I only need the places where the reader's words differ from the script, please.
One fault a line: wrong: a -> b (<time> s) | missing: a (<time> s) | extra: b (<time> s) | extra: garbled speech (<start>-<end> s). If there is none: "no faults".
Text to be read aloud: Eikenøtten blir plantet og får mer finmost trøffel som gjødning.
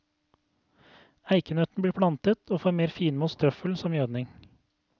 no faults